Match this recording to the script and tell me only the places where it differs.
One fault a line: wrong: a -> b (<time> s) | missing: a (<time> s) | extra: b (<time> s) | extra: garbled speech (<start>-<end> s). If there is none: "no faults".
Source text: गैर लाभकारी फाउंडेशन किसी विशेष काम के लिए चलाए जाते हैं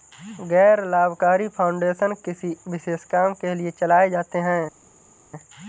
no faults